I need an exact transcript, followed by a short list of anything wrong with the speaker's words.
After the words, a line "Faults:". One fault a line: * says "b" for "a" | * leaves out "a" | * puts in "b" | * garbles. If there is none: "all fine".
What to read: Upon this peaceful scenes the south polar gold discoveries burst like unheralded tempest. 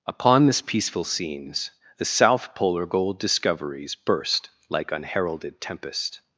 Upon this peaceful scenes the south polar gold discoveries burst like unheralded tempest.
Faults:
all fine